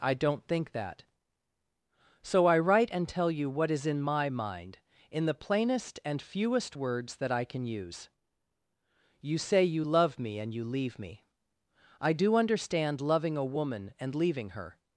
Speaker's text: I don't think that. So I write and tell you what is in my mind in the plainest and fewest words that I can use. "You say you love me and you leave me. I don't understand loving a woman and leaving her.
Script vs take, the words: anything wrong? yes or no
yes